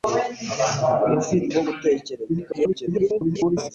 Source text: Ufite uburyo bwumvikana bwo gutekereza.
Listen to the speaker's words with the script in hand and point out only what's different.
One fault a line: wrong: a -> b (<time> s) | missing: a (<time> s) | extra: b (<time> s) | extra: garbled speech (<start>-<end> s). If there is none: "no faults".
missing: uburyo bwumvikana (1.5 s)
extra: garbled speech (2.3-3.7 s)